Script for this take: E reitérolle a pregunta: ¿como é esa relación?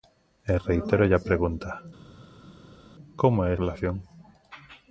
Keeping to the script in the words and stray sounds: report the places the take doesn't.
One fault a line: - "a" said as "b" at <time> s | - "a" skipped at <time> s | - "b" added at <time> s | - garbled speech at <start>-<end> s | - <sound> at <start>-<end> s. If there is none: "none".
- "esa" skipped at 3.5 s